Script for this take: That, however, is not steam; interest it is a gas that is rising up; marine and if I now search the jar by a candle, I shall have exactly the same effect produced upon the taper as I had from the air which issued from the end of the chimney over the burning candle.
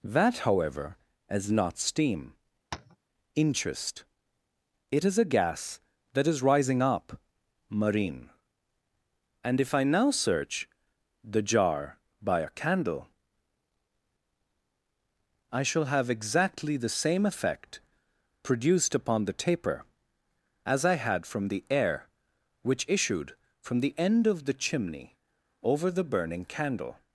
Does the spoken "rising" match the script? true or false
true